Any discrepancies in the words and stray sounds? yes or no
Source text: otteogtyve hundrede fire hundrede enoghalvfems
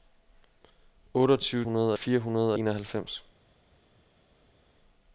no